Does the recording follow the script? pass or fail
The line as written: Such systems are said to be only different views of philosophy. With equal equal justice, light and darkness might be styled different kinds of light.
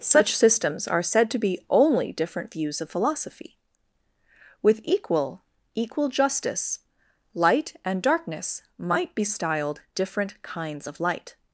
pass